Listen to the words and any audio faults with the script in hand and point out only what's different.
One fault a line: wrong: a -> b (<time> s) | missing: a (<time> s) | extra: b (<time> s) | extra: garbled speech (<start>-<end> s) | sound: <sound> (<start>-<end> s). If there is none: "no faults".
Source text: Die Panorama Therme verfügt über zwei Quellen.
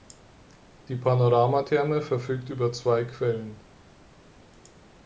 no faults